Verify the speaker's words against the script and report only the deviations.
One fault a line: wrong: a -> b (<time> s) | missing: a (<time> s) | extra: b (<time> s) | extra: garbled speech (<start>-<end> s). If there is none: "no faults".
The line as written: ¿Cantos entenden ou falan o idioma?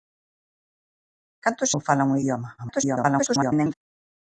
missing: entenden (1.7 s)
extra: garbled speech (2.6-3.7 s)